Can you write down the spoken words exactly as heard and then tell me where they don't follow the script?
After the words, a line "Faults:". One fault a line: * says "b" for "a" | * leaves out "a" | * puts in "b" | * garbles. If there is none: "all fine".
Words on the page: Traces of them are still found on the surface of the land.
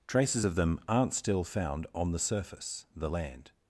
Traces of them aren't still found on the surface the land.
Faults:
* says "aren't" for "are"
* leaves out "of"